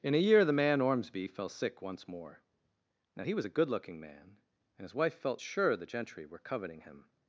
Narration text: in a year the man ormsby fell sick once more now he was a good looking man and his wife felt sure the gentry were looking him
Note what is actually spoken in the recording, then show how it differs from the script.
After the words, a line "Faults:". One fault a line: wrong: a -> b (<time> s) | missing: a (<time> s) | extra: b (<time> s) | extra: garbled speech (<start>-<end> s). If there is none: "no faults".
in a year the man ormsby fell sick once more now he was a good looking man and his wife felt sure the gentry were coveting him
Faults:
wrong: looking -> coveting (6.4 s)